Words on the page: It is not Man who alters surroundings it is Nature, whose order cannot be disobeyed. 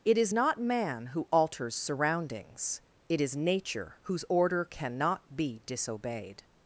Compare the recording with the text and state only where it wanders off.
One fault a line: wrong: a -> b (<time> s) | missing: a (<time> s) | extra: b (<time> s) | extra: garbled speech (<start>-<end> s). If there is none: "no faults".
no faults